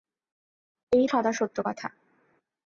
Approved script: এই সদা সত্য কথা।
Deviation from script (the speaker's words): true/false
false